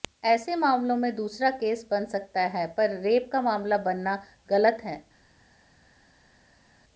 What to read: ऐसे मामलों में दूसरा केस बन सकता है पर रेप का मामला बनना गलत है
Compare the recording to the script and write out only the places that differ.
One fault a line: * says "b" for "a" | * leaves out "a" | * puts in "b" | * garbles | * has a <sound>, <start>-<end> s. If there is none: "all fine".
all fine